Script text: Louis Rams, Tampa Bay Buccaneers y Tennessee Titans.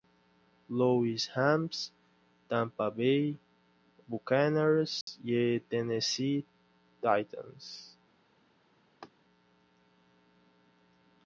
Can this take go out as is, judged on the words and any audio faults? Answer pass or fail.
fail